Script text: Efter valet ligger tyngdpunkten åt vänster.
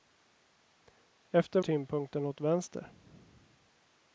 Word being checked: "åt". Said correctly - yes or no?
yes